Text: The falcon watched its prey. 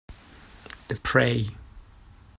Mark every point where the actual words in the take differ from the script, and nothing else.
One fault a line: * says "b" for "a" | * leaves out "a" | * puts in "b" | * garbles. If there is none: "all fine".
* leaves out "falcon watched its"